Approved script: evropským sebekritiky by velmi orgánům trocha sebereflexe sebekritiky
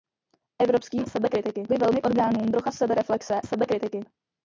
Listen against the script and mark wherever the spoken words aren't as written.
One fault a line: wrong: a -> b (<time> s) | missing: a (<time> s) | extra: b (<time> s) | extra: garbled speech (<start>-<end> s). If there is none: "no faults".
no faults